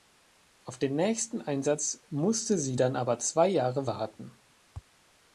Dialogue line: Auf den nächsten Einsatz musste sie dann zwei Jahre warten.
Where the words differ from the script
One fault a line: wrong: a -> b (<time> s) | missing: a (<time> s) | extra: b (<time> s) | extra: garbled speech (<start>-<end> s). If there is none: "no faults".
extra: aber (3.0 s)